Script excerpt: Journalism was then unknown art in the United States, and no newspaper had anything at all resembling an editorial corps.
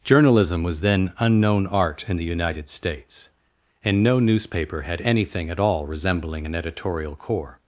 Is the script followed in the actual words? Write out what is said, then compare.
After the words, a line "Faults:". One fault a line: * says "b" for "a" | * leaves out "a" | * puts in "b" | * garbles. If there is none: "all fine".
Journalism was then unknown art in the United States, and no newspaper had anything at all resembling an editorial corps.
Faults:
all fine